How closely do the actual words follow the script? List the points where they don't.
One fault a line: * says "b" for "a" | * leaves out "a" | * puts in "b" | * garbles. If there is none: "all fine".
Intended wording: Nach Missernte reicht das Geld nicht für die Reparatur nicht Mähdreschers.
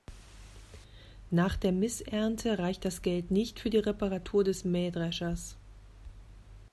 * puts in "der"
* says "des" for "nicht"